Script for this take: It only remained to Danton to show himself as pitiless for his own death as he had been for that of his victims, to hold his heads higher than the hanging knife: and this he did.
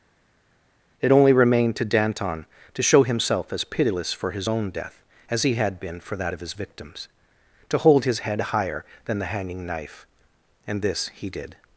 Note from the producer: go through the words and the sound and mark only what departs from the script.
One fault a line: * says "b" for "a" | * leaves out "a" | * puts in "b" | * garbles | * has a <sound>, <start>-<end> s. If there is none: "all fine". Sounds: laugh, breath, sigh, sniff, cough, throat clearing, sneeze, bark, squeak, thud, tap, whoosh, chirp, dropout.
* says "head" for "heads"